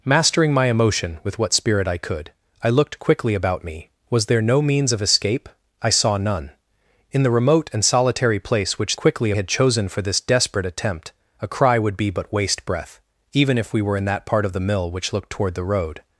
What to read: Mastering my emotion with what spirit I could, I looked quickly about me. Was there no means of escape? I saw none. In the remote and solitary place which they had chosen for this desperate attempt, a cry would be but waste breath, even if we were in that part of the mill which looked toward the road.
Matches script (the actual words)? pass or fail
fail